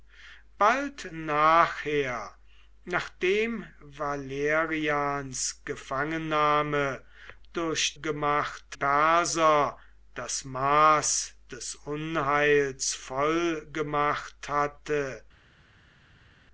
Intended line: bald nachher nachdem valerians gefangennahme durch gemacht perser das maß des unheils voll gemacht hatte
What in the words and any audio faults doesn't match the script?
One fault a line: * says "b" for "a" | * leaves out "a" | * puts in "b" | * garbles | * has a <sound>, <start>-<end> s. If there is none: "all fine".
all fine